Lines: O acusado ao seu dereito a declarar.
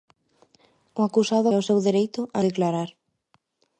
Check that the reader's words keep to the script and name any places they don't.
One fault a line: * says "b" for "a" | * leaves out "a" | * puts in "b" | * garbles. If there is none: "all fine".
all fine